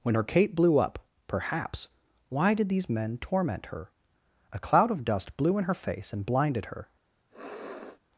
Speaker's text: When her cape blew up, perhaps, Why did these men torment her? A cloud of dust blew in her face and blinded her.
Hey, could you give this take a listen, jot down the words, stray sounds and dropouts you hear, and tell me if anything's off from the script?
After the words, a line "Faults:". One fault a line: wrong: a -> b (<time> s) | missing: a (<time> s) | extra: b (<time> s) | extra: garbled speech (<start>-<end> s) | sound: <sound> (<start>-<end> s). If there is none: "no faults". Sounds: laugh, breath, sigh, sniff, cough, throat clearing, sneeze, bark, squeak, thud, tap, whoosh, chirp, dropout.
When her cape blew up, perhaps, Why did these men torment her? A cloud of dust blew in her face and blinded her.
Faults:
sound: sniff (7.3-8.0 s)